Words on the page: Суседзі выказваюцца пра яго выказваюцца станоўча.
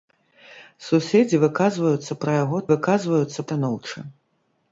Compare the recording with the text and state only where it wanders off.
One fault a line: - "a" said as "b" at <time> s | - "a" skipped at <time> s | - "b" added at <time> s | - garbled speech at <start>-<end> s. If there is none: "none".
none